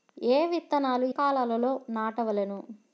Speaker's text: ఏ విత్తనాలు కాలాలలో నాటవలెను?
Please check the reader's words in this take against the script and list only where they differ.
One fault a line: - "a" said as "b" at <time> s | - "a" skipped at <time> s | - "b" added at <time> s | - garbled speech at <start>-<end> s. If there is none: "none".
none